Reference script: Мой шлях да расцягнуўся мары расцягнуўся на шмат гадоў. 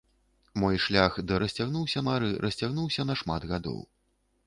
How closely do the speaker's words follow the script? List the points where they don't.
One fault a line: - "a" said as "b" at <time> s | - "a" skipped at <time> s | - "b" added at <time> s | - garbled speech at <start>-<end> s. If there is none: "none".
none